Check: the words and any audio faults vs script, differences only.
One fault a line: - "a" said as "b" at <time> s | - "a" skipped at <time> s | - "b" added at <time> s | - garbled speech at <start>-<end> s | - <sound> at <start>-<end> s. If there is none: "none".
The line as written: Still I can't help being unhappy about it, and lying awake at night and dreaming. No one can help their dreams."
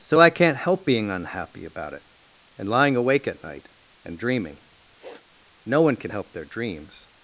- "Still" said as "So" at 0.0 s
- sniff at 5.0-5.3 s